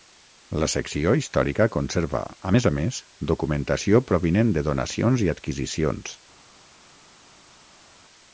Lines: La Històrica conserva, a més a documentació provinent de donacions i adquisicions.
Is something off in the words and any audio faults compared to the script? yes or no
yes